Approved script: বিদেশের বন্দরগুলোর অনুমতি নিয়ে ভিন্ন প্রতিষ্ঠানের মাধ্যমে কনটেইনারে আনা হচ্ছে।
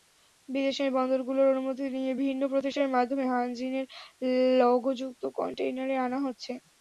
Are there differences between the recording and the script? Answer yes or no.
yes